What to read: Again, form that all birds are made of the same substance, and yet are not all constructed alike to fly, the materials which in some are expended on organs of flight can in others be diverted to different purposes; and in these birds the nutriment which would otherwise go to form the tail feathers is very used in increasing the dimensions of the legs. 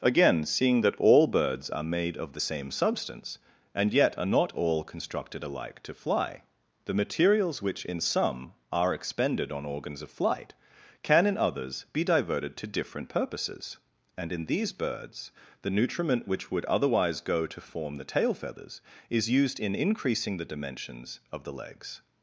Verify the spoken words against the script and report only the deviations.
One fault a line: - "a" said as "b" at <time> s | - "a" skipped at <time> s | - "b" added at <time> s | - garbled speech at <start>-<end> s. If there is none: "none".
- "form" said as "seeing" at 0.5 s
- "very" skipped at 19.3 s